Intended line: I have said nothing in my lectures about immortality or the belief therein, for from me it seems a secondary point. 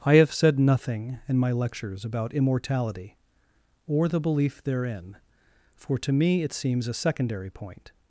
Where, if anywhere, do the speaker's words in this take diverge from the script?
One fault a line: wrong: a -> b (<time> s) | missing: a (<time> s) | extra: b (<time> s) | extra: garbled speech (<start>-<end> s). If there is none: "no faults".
wrong: from -> to (6.0 s)